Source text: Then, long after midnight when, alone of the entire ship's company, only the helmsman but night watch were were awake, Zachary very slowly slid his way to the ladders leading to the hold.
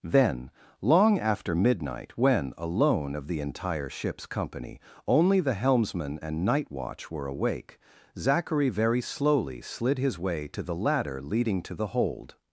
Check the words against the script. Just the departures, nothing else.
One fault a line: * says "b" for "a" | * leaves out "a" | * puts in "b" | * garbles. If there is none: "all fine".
* says "and" for "but"
* leaves out "were"
* says "ladder" for "ladders"